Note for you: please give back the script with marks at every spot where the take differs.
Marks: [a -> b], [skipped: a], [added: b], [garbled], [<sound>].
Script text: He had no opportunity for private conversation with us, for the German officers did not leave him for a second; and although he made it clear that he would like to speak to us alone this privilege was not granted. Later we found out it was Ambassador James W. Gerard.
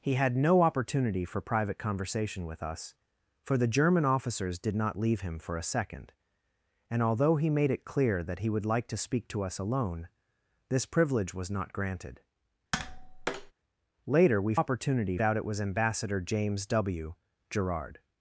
He had no opportunity for private conversation with us, for the German officers did not leave him for a second; and although he made it clear that he would like to speak to us alone this privilege was not granted. [tap] Later we [found -> opportunity] out it was Ambassador James W. Gerard.